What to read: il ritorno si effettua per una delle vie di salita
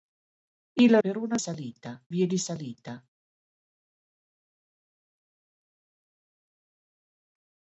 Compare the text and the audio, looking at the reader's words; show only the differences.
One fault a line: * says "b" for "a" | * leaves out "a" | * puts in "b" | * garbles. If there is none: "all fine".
* leaves out "ritorno si effettua"
* says "salita" for "delle"